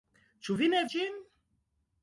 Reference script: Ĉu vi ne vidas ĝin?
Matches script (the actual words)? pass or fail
fail